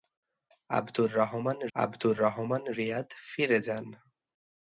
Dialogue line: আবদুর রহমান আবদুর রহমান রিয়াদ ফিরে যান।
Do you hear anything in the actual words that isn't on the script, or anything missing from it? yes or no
no